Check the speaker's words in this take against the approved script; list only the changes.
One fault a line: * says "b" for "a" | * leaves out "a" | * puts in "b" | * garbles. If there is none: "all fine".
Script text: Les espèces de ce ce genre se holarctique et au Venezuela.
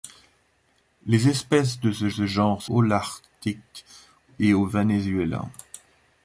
all fine